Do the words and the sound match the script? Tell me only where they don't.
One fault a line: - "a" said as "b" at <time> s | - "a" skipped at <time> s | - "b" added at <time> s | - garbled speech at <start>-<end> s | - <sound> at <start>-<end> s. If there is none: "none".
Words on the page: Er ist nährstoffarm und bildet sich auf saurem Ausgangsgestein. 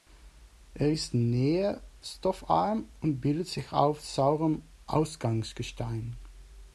none